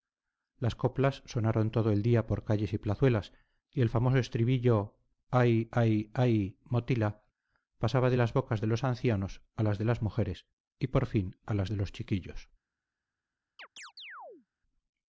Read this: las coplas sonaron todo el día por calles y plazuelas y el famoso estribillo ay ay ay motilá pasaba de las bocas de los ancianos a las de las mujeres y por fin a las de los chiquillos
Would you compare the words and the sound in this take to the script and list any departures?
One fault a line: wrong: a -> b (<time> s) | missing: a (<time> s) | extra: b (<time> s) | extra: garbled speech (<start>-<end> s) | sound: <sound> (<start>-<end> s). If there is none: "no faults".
sound: chirp (13.6-14.5 s)